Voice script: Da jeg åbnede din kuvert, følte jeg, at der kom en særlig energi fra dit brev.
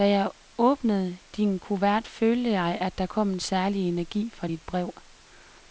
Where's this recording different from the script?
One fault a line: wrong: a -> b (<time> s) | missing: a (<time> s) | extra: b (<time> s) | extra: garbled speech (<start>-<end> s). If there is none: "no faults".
no faults